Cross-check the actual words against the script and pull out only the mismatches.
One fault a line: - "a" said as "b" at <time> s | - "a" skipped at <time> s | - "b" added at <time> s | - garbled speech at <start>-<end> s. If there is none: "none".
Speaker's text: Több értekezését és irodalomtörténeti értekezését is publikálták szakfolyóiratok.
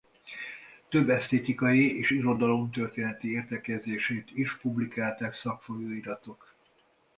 - "értekezését" said as "esztétikai" at 1.1 s